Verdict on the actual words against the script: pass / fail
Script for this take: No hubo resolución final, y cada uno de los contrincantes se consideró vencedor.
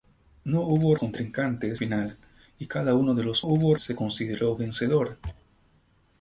fail